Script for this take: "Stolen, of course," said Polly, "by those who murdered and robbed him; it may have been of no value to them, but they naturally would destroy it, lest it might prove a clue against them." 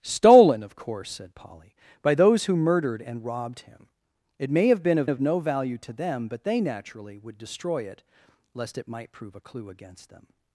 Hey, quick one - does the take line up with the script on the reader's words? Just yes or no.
no